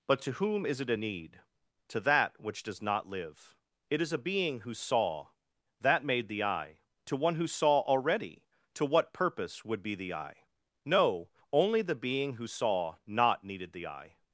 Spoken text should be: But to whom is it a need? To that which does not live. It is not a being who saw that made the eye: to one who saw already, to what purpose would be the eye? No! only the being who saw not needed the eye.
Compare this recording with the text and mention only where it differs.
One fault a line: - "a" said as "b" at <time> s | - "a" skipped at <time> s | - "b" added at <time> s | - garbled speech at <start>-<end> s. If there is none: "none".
- "not" skipped at 4.1 s